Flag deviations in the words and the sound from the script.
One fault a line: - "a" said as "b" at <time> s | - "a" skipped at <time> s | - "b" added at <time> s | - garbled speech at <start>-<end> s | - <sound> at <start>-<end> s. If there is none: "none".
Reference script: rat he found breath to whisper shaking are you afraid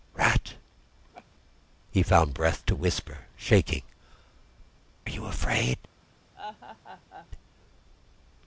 - laugh at 1.1-1.3 s
- "are" skipped at 3.8 s
- laugh at 6.3-7.3 s